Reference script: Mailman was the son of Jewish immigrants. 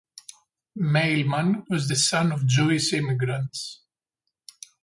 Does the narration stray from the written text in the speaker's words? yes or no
no